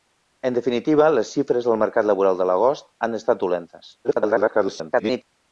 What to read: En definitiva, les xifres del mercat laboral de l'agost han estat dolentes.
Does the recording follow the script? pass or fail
fail